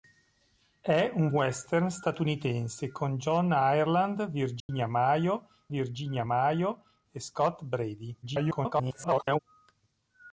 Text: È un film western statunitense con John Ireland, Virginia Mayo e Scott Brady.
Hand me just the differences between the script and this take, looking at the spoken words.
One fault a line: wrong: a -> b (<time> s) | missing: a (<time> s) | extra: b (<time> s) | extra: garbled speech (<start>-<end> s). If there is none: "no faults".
missing: film (1.3 s)
extra: Virginia Mayo (5.7 s)
extra: garbled speech (8.2-9.4 s)